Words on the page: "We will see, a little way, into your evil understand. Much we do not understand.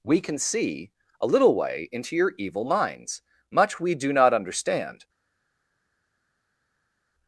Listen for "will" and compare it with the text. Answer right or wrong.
wrong